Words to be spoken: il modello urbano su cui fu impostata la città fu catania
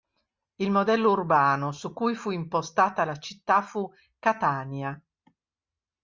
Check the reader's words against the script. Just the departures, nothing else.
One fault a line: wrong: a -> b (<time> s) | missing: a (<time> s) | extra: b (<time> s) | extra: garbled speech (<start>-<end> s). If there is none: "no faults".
no faults